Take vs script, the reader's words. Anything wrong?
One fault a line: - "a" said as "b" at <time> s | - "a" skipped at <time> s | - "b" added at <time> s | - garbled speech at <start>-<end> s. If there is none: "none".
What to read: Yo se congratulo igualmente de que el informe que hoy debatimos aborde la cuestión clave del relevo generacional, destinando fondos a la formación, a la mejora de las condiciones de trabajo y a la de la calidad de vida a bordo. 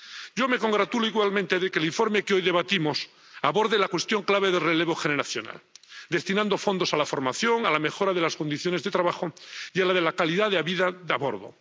- "se" said as "me" at 0.5 s